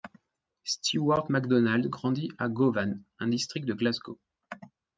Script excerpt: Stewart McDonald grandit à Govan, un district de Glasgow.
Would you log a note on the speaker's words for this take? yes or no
no